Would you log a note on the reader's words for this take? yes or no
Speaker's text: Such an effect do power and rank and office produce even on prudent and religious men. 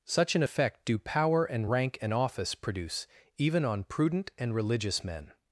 no